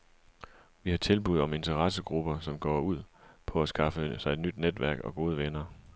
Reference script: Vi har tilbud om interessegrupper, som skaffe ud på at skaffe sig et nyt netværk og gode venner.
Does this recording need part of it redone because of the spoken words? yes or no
yes